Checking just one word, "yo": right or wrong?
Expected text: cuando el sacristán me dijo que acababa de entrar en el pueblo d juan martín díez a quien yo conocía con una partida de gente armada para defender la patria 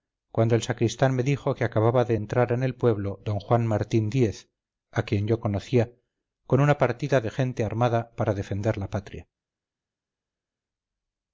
right